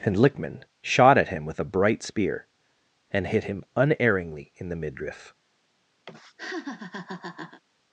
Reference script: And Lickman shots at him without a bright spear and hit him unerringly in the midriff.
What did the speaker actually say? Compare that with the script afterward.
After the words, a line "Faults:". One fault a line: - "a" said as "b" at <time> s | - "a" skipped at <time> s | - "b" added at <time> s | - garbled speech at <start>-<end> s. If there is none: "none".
And Lickman shot at him with a bright spear and hit him unerringly in the midriff.
Faults:
- "shots" said as "shot" at 0.8 s
- "without" said as "with" at 1.4 s